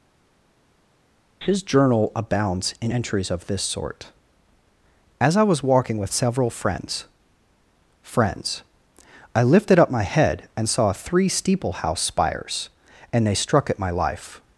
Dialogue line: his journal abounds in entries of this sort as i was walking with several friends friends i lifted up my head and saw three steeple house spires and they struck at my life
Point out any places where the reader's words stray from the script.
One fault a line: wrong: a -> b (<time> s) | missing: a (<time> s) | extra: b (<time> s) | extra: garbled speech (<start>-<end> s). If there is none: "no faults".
no faults